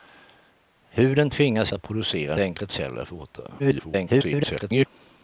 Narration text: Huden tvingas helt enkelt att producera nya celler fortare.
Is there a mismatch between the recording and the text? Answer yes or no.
yes